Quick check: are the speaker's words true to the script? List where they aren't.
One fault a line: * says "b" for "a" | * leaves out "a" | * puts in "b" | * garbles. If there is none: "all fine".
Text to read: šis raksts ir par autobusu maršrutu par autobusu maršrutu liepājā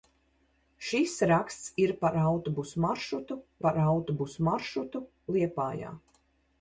all fine